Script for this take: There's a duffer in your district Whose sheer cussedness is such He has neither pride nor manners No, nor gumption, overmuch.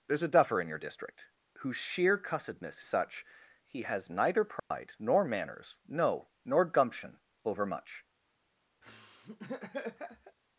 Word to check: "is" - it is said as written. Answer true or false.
false